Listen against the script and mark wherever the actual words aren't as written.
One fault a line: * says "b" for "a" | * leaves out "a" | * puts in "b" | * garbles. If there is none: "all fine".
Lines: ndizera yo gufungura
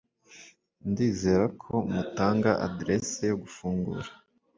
* puts in "ko mutanga adresse"